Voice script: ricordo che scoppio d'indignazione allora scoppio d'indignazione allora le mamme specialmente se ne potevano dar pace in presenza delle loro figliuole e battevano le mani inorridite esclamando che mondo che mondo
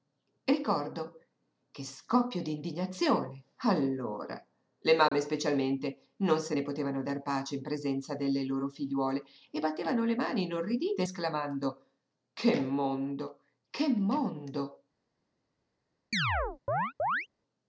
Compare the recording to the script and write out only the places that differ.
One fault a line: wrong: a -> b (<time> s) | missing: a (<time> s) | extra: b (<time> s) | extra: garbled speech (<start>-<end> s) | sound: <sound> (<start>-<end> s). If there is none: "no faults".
missing: scoppio d'indignazione allora (4.4 s)
sound: dropout (5.1-5.1 s)
extra: non (6.2 s)
sound: chirp (16.1-17.3 s)